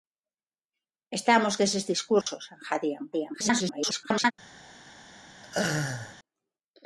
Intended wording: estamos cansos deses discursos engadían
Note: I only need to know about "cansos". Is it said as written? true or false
false